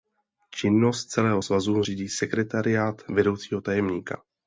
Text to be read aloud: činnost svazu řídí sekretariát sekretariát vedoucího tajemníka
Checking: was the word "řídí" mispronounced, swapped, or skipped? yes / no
no